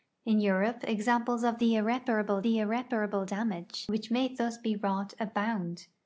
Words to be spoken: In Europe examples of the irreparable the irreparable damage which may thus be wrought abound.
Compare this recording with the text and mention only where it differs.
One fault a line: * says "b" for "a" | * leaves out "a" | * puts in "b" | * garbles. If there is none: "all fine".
all fine